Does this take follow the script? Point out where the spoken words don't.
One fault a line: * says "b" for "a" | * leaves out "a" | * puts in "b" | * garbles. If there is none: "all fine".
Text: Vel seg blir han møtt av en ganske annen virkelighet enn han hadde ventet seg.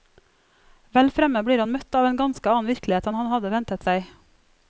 * says "fremme" for "seg"